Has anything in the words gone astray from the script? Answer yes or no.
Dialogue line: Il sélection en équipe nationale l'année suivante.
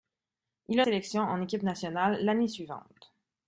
no